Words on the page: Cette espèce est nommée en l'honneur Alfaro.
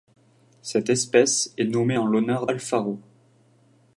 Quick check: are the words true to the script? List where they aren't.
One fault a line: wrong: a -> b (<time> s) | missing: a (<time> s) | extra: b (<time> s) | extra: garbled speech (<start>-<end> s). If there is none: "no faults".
no faults